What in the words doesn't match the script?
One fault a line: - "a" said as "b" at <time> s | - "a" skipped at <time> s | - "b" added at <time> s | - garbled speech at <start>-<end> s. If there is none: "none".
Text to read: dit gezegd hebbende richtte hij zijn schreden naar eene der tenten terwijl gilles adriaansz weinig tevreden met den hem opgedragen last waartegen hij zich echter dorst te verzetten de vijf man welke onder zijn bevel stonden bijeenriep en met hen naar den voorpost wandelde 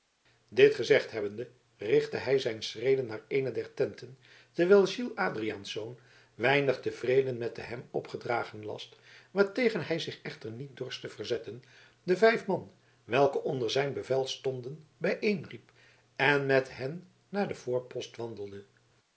- "niet" added at 10.5 s